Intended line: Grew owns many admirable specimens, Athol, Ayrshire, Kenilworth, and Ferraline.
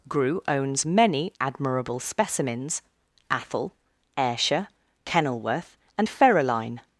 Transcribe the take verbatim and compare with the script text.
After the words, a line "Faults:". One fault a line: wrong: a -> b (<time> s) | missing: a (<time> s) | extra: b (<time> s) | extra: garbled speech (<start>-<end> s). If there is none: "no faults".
Grew owns many admirable specimens, Athol, Ayrshire, Kenilworth, and Ferraline.
Faults:
no faults